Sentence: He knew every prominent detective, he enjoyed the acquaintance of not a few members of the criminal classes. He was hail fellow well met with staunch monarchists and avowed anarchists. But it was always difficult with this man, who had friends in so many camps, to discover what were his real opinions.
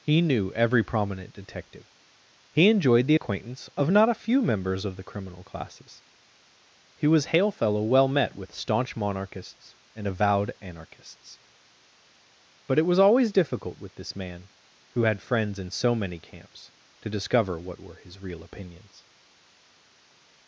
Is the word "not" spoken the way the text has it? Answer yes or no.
yes